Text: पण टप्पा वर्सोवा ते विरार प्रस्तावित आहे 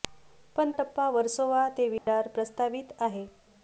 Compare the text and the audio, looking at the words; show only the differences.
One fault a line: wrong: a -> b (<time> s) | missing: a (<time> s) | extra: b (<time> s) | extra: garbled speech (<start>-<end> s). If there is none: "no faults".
no faults